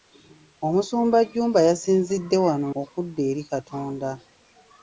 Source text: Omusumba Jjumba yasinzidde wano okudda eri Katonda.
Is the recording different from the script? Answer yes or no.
no